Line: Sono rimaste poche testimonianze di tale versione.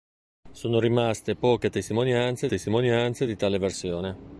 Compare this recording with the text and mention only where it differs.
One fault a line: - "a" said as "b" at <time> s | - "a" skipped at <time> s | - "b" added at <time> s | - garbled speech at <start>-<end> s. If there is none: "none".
- "testimonianze" added at 2.4 s